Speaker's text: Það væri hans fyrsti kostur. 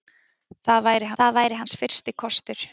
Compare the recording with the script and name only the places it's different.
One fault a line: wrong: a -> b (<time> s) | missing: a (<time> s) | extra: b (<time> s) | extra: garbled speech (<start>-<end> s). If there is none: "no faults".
extra: það væri (1.2 s)